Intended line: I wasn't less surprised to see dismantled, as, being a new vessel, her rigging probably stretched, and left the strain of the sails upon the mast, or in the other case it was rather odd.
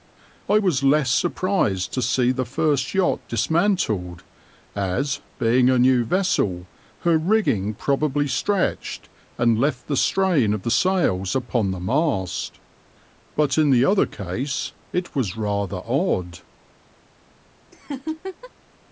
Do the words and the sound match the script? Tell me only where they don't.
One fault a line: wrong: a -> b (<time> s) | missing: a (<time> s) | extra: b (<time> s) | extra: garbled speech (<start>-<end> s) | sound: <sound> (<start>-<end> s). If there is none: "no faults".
wrong: wasn't -> was (0.6 s)
extra: the first yacht (2.3 s)
wrong: or -> but (13.3 s)
sound: laugh (17.7-18.5 s)